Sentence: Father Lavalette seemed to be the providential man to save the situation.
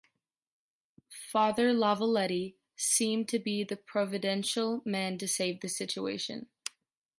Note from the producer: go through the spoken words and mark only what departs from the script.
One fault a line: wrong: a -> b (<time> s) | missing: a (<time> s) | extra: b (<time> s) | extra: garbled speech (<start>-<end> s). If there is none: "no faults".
no faults